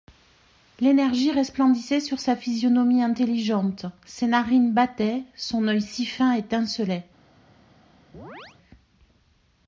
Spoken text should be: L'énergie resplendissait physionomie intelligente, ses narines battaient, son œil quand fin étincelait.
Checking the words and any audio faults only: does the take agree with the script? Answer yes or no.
no